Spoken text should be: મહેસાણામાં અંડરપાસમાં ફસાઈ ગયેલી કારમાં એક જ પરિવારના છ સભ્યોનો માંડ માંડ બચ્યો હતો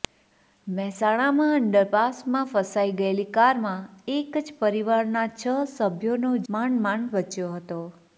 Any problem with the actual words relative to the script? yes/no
no